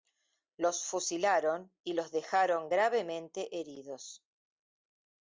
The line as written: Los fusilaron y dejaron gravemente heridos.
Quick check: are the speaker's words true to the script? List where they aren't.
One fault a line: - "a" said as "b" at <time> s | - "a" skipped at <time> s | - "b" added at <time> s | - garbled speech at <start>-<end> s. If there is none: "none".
- "los" added at 1.9 s